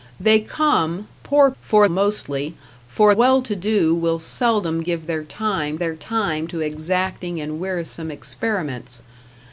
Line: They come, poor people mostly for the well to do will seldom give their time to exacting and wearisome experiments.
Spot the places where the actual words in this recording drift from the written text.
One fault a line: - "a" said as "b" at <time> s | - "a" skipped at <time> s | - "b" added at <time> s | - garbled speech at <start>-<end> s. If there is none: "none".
- "people" said as "for" at 1.6 s
- "the" skipped at 3.1 s
- "their time" added at 5.8 s